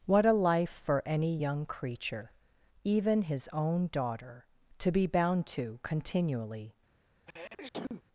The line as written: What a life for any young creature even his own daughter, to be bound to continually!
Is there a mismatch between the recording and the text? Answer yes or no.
no